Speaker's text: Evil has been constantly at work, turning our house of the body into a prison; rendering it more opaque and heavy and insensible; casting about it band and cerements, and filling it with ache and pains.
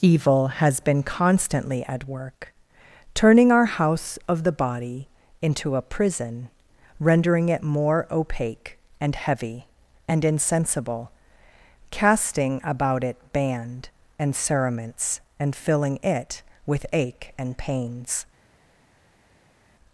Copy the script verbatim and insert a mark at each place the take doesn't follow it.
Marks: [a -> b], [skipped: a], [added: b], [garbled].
Evil has been constantly at work, turning our house of the body into a prison; rendering it more opaque and heavy and insensible; casting about it band and cerements, and filling it with ache and pains.